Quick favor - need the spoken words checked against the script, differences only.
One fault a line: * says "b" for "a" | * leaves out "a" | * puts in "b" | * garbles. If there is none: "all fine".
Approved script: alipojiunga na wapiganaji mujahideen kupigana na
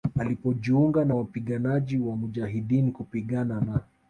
* puts in "wa"